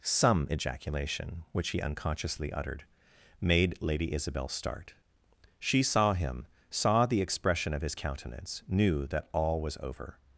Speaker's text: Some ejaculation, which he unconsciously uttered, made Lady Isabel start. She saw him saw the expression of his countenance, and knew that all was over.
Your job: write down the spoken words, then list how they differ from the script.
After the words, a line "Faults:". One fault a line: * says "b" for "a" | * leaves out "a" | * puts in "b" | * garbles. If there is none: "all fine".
Some ejaculation, which he unconsciously uttered, made Lady Isabel start. She saw him saw the expression of his countenance, knew that all was over.
Faults:
* leaves out "and"